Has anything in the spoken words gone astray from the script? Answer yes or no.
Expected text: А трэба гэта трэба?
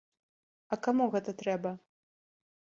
yes